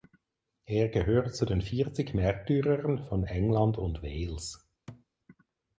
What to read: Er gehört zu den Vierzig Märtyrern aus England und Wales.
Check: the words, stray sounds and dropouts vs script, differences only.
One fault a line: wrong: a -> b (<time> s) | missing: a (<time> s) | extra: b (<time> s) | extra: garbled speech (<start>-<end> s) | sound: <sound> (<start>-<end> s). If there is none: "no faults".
wrong: aus -> von (3.0 s)
sound: thud (4.9-5.1 s)